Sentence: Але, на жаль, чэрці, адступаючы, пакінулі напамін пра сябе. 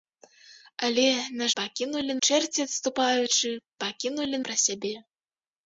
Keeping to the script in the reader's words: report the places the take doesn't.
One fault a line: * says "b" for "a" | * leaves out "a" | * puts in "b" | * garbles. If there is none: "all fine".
* says "пакінулі" for "жаль"
* leaves out "напамін"